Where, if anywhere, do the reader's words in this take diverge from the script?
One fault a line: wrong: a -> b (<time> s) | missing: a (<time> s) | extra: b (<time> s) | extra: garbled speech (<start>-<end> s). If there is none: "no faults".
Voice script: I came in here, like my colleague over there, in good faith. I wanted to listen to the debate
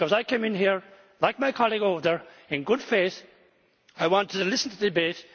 no faults